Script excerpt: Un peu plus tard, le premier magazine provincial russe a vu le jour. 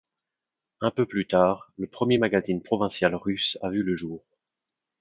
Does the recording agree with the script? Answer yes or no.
yes